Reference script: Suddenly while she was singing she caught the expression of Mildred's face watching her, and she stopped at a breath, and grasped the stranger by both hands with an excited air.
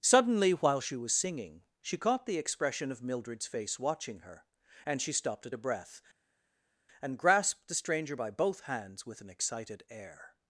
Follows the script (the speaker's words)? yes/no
yes